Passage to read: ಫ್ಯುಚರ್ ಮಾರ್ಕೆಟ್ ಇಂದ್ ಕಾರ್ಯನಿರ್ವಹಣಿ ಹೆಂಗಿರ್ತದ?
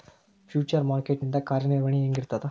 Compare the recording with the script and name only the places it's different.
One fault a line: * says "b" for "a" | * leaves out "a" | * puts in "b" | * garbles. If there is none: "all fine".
all fine